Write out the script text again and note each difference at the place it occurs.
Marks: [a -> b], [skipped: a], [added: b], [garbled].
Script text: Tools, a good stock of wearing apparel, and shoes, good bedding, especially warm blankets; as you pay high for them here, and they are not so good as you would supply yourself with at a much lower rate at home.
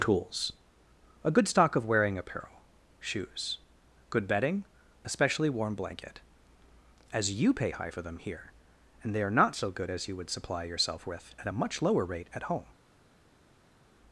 Tools, a good stock of wearing apparel, [skipped: and] shoes, good bedding, especially warm [blankets; -> blanket] as you pay high for them here, and they are not so good as you would supply yourself with at a much lower rate at home.